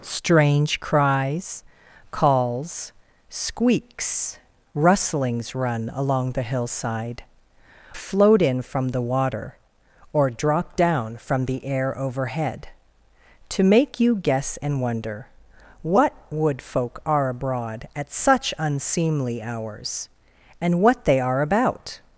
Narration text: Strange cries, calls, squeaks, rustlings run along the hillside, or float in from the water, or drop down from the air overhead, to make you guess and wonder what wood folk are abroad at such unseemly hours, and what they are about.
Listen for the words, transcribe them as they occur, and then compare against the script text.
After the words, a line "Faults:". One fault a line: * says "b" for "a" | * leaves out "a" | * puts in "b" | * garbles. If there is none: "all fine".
Strange cries, calls, squeaks, rustlings run along the hillside, float in from the water, or drop down from the air overhead, to make you guess and wonder what wood folk are abroad at such unseemly hours, and what they are about.
Faults:
* leaves out "or"